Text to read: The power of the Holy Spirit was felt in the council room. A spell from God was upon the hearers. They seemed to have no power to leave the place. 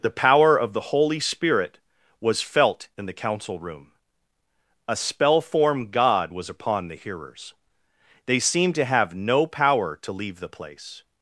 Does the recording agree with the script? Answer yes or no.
no